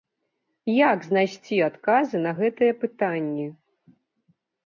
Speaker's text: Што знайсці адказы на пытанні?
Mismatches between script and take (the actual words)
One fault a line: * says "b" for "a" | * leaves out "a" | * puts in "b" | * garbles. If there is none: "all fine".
* says "Як" for "Што"
* puts in "гэтыя"